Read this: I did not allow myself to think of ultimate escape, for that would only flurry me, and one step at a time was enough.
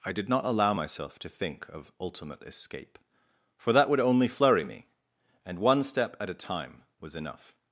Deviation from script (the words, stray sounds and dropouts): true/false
false